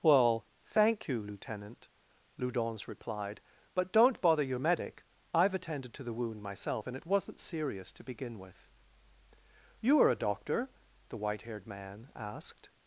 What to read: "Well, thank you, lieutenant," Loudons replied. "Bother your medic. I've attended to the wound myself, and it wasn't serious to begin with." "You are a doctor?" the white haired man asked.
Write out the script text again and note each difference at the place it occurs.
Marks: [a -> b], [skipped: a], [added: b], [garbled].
"Well, thank you, lieutenant," Loudons replied. [added: But don't] "Bother your medic. I've attended to the wound myself, and it wasn't serious to begin with." "You are a doctor?" the white haired man asked.